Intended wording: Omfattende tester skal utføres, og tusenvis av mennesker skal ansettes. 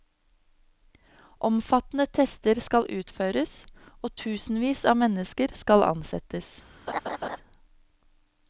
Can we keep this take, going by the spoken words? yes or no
yes